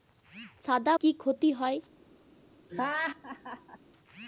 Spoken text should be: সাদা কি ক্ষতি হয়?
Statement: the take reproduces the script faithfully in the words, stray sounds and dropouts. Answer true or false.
false